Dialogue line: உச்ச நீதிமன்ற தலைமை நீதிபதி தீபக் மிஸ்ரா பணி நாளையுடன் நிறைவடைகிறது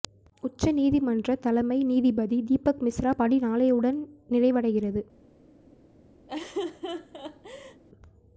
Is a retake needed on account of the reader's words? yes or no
no